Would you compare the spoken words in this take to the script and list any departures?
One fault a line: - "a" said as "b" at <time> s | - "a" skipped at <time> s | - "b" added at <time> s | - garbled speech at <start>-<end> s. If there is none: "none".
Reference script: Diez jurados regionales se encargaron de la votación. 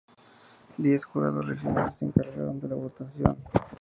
none